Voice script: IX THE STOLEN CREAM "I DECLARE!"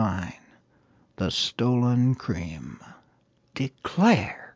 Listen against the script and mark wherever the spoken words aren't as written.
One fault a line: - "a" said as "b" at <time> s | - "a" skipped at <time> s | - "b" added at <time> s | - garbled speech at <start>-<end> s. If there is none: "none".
- "I" skipped at 2.8 s